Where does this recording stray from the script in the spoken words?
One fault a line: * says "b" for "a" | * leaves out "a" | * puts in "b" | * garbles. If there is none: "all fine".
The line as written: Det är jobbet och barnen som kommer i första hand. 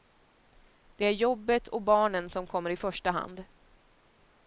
all fine